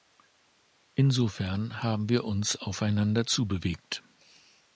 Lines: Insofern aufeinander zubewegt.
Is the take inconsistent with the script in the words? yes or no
yes